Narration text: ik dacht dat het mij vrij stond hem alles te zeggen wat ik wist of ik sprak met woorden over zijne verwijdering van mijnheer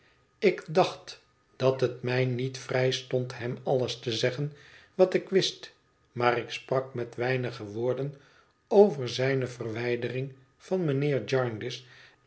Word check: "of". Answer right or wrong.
wrong